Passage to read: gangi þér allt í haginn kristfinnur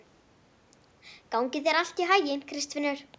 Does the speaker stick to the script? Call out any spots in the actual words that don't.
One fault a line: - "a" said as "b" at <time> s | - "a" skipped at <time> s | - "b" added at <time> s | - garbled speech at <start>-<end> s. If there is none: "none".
none